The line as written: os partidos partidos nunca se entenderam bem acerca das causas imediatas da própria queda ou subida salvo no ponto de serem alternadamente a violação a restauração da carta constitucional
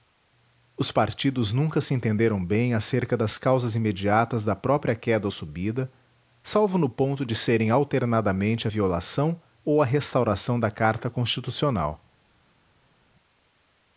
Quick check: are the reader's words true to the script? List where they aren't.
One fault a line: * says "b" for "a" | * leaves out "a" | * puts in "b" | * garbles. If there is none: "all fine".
* leaves out "partidos"
* puts in "ou"